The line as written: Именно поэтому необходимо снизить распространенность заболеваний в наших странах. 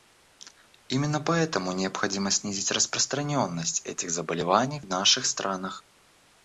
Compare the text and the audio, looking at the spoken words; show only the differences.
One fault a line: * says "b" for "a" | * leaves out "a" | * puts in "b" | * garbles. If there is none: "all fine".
* puts in "этих"